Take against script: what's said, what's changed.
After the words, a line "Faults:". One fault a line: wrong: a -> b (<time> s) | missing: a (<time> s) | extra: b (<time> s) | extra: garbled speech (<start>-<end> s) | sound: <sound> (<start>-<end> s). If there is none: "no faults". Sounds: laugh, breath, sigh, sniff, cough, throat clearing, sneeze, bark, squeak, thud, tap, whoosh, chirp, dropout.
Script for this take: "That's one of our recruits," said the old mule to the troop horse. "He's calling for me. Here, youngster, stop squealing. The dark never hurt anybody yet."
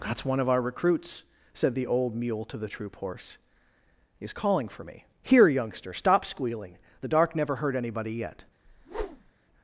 "That's one of our recruits," said the old mule to the troop horse. "He's calling for me. Here, youngster, stop squealing. The dark never hurt anybody yet."
Faults:
sound: whoosh (8.6-9.3 s)